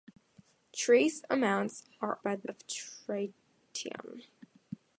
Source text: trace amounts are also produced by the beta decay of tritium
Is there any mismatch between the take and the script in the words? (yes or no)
yes